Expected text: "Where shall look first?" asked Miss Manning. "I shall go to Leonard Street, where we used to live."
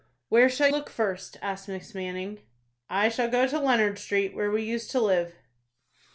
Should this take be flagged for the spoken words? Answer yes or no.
no